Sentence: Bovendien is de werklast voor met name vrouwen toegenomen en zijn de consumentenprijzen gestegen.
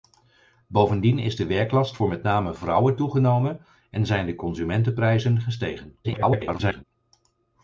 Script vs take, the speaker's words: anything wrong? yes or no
yes